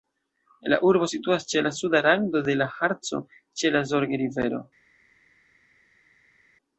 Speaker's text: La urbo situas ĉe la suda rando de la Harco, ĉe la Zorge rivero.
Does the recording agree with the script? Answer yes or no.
yes